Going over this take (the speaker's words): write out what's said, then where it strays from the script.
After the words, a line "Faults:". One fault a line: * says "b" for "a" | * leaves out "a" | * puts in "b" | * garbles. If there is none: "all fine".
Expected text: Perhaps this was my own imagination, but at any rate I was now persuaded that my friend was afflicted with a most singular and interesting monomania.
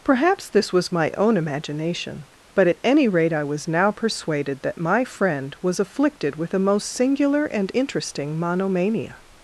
Perhaps this was my own imagination, but at any rate I was now persuaded that my friend was afflicted with a most singular and interesting monomania.
Faults:
all fine